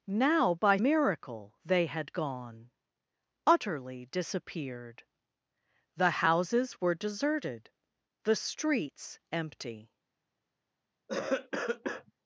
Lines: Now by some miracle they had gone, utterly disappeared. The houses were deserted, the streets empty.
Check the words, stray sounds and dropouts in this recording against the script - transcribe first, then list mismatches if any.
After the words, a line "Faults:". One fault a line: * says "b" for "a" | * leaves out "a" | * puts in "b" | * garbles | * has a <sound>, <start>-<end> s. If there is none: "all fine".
Now by miracle they had gone, utterly disappeared. The houses were deserted, the streets empty.
Faults:
* leaves out "some"
* has a cough, 11.1-12.1 s